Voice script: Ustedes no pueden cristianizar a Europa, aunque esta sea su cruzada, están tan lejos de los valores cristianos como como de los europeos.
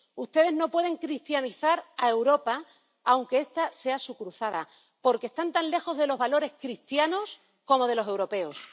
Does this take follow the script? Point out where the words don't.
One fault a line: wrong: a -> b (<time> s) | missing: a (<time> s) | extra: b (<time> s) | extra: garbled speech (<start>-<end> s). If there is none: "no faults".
extra: porque (5.0 s)
missing: como (7.9 s)